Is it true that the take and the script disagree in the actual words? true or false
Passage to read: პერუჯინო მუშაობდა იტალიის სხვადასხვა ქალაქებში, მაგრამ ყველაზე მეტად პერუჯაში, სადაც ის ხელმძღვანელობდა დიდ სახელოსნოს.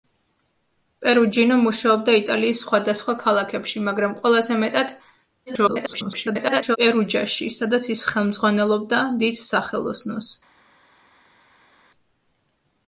true